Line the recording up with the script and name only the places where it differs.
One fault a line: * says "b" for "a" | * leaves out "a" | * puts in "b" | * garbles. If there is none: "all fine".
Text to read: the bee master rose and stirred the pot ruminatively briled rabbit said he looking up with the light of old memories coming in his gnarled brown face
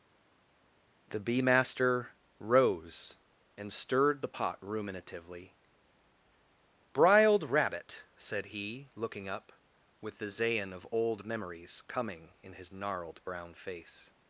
* says "zayin" for "light"